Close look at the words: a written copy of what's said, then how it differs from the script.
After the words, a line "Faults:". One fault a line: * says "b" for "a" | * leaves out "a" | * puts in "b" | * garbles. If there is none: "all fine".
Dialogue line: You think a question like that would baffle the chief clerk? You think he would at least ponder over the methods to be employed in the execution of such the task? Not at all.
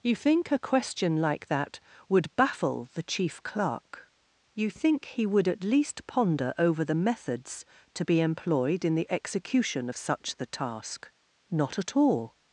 You think a question like that would baffle the chief clerk? You think he would at least ponder over the methods to be employed in the execution of such the task? Not at all.
Faults:
all fine